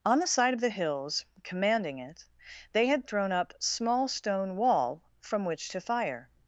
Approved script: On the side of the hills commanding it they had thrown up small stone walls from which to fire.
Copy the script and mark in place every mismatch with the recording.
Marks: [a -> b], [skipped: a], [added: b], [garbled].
On the side of the hills commanding it they had thrown up small stone [walls -> wall] from which to fire.